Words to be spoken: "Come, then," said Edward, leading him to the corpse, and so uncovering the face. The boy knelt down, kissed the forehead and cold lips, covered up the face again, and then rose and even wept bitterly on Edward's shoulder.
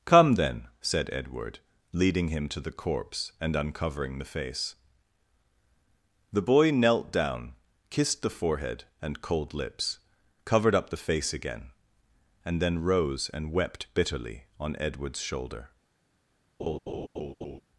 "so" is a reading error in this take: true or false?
true